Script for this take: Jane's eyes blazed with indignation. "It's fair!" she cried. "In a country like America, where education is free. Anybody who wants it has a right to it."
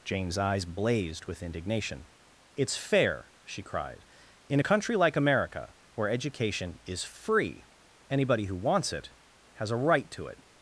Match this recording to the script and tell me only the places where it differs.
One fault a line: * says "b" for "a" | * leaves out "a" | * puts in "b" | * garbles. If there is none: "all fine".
all fine